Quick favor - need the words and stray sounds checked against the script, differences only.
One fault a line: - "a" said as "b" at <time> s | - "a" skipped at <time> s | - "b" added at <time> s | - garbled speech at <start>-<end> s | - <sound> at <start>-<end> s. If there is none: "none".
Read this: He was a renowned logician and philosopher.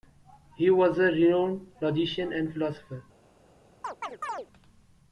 - chirp at 3.8-4.5 s